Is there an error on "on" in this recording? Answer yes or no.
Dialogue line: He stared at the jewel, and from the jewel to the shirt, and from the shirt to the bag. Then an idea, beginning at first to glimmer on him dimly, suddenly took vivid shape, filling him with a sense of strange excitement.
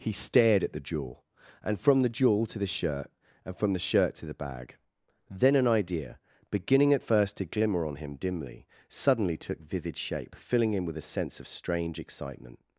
no